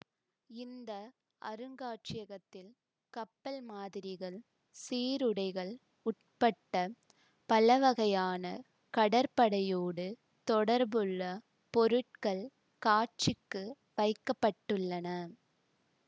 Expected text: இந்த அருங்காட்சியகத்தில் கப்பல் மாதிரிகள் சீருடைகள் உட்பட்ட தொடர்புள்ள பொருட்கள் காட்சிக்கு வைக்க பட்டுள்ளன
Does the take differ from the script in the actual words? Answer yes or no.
yes